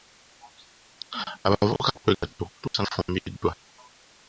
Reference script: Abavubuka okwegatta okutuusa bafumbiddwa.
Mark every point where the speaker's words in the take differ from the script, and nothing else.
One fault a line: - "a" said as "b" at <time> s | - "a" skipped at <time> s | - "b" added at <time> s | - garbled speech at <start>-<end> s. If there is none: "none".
none